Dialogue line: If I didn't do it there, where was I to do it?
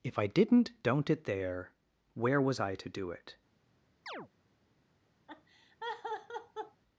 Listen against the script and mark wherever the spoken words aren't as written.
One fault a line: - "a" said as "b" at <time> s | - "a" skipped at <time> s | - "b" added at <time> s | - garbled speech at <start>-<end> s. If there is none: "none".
- "do" said as "don't" at 0.8 s